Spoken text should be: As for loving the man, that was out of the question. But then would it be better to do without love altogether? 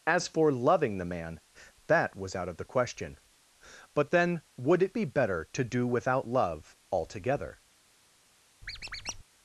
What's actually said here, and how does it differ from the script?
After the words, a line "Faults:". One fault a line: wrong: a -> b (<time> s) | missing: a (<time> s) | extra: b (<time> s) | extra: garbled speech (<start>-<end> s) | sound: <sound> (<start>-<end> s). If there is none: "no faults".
As for loving the man, that was out of the question. But then would it be better to do without love altogether?
Faults:
sound: squeak (8.6-9.2 s)